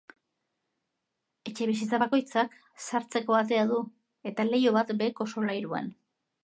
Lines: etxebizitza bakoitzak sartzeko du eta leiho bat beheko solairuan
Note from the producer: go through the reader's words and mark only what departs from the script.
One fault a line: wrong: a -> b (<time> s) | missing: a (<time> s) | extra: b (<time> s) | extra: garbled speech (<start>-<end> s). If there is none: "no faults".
extra: atea (3.4 s)